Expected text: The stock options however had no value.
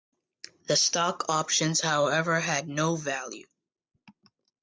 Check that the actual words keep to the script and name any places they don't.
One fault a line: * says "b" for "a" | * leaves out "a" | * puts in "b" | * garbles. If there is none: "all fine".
all fine